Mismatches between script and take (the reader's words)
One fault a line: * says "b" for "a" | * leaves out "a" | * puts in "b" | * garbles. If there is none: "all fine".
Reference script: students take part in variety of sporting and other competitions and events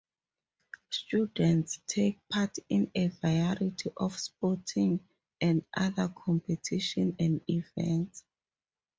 * puts in "a"